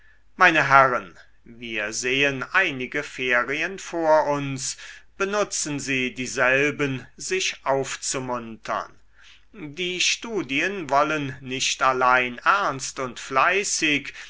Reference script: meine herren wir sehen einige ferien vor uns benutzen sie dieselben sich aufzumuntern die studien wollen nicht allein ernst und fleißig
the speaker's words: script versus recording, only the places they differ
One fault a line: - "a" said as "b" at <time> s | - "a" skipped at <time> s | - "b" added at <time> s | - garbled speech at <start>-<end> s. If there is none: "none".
none